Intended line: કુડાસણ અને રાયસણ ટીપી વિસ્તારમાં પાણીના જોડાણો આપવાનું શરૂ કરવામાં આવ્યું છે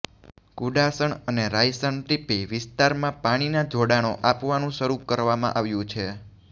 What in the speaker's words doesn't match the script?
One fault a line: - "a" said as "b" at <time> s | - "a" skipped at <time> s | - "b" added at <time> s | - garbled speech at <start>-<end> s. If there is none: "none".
none